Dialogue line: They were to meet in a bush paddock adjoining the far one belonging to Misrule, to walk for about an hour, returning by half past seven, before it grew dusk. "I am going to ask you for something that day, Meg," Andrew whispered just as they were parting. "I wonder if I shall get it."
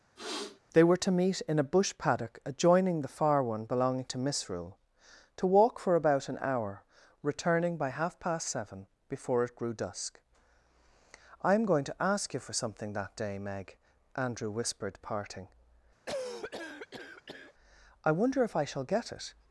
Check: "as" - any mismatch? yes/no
yes